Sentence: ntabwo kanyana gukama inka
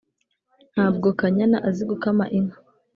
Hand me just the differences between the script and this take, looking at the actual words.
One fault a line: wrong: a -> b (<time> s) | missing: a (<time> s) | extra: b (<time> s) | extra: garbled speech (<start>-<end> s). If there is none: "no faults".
extra: azi (1.7 s)